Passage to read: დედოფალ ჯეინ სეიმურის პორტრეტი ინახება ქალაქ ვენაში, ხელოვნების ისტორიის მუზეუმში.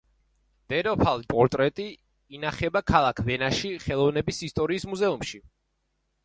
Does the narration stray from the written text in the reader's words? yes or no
yes